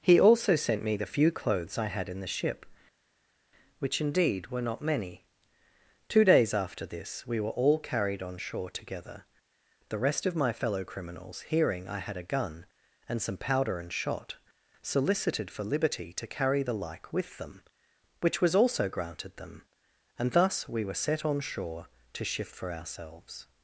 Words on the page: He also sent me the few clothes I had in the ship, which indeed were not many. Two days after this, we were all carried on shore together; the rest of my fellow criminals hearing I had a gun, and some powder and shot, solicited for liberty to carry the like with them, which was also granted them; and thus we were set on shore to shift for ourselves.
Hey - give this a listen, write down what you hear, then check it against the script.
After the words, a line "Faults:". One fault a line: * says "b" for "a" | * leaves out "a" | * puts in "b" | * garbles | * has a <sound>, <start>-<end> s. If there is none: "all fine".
He also sent me the few clothes I had in the ship, which indeed were not many. Two days after this, we were all carried on shore together; the rest of my fellow criminals hearing I had a gun, and some powder and shot, solicited for liberty to carry the like with them, which was also granted them; and thus we were set on shore to shift for ourselves.
Faults:
all fine